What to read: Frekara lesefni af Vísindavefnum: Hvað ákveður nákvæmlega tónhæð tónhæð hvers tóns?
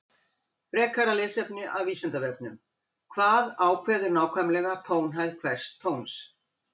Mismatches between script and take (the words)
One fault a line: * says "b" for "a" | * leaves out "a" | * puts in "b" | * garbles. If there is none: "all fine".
* leaves out "tónhæð"